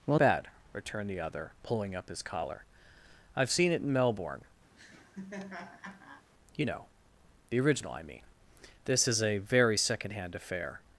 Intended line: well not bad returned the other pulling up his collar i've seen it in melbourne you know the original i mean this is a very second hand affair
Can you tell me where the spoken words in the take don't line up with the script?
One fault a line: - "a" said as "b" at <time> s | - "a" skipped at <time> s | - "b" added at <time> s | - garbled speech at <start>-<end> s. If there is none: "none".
- "not" skipped at 0.2 s